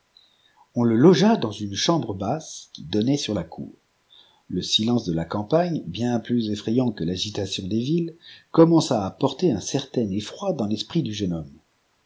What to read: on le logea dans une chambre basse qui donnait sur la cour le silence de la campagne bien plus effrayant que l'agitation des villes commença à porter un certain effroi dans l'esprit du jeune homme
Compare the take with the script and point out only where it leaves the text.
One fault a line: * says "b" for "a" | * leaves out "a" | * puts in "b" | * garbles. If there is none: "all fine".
all fine